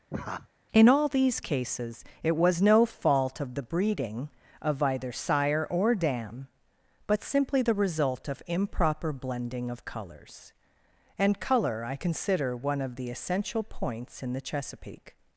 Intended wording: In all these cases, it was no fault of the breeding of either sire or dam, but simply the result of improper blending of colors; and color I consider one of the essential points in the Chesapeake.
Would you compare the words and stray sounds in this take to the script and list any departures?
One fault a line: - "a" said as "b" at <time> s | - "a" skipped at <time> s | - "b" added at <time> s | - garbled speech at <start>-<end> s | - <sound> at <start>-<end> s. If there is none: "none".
- laugh at 0.1-0.5 s